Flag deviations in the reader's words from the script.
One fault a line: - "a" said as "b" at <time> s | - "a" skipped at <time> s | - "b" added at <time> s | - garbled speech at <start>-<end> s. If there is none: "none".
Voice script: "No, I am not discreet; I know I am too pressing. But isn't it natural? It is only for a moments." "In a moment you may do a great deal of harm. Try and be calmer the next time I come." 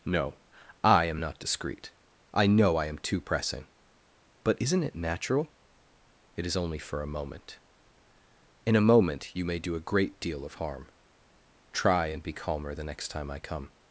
- "moments" said as "moment" at 7.1 s